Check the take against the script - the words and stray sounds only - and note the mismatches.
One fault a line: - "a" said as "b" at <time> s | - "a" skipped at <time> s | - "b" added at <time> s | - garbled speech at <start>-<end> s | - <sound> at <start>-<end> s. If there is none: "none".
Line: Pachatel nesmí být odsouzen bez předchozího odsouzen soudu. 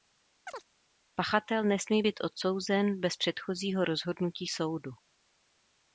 - chirp at 0.5-0.7 s
- "odsouzen" said as "rozhodnutí" at 3.8 s